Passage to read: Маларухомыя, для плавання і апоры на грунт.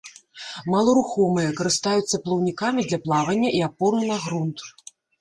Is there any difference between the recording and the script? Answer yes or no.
yes